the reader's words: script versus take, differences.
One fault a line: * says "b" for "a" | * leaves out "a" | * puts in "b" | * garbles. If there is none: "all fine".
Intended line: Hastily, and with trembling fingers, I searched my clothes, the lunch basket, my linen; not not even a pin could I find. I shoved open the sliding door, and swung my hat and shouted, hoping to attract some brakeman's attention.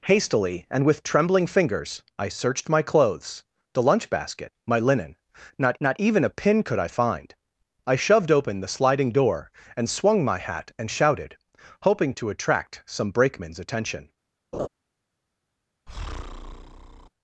all fine